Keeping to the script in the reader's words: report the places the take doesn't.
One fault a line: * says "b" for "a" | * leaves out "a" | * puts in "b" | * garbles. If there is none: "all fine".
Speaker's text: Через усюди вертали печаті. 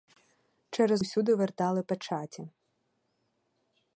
all fine